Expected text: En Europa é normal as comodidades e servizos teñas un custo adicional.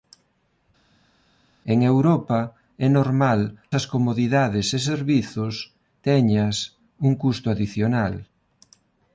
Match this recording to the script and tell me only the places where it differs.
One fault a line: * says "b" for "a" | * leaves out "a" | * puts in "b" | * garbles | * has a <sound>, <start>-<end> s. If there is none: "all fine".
all fine